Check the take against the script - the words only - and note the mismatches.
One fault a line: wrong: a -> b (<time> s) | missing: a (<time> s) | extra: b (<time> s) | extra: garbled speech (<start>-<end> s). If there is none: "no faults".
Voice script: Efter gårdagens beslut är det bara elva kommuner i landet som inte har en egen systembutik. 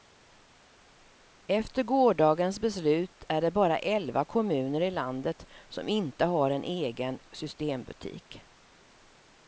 no faults